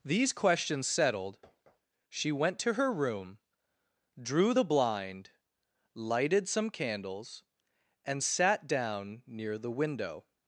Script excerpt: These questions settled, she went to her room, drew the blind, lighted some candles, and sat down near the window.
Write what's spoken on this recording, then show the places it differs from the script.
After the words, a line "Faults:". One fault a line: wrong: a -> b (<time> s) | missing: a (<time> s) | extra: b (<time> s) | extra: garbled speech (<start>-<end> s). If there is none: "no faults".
These questions settled, she went to her room, drew the blind, lighted some candles, and sat down near the window.
Faults:
no faults